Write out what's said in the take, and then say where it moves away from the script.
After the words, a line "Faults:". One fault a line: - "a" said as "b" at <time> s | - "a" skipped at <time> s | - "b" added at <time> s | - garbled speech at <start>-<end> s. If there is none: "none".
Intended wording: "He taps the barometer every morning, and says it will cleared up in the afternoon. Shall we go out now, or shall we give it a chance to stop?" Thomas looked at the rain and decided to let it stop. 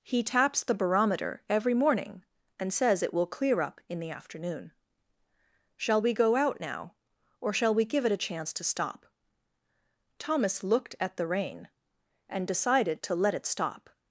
"He taps the barometer every morning, and says it will clear up in the afternoon. Shall we go out now, or shall we give it a chance to stop?" Thomas looked at the rain and decided to let it stop.
Faults:
- "cleared" said as "clear" at 3.3 s